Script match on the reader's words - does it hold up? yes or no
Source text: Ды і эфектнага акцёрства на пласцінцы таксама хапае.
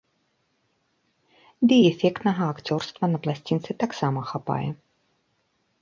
yes